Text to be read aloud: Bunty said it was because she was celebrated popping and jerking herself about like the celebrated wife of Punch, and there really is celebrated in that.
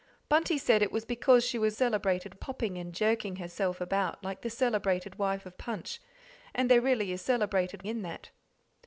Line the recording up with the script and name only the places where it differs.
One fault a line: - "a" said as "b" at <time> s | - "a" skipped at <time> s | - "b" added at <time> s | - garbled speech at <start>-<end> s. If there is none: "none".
none